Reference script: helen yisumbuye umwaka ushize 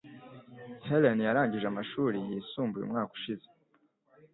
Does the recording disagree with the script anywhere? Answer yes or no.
yes